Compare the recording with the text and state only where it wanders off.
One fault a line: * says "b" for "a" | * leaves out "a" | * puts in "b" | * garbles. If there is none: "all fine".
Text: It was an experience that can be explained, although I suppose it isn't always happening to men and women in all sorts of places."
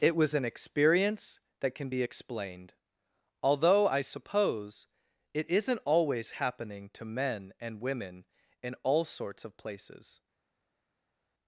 all fine